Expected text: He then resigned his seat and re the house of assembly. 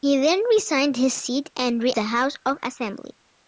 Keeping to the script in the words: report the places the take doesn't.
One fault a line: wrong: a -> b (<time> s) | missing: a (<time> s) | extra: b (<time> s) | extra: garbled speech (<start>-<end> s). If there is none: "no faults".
no faults